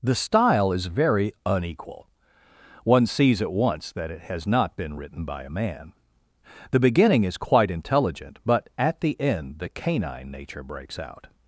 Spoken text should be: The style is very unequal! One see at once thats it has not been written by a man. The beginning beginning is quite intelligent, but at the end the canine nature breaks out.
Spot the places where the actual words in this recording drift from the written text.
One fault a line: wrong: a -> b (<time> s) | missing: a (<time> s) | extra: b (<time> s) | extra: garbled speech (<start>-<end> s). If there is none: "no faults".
wrong: see -> sees (3.0 s)
wrong: thats -> that (3.9 s)
missing: beginning (7.2 s)